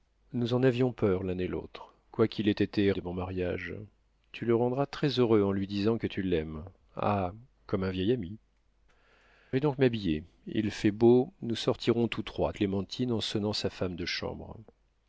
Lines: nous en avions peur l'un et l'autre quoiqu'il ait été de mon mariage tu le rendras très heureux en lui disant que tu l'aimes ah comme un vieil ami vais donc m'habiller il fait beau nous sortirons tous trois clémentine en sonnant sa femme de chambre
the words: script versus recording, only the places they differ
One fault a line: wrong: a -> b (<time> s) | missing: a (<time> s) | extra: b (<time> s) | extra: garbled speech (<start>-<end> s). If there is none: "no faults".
no faults